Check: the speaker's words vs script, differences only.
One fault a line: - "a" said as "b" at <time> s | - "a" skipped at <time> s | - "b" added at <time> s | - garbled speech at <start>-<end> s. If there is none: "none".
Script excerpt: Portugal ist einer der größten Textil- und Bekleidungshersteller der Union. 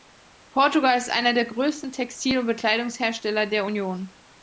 none